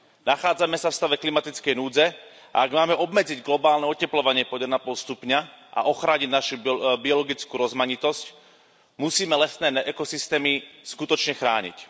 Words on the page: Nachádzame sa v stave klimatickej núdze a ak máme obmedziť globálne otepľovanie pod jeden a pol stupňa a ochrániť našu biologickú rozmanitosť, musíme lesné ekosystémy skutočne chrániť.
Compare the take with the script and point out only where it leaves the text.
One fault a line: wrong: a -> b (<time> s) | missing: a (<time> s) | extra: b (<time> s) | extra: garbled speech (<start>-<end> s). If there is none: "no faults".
no faults